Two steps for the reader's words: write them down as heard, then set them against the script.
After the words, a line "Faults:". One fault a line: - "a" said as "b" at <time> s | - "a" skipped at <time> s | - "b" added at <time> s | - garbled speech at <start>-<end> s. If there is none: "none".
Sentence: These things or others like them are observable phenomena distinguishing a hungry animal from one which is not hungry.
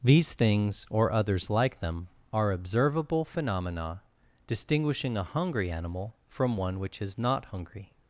These things or others like them are observable phenomena distinguishing a hungry animal from one which is not hungry.
Faults:
none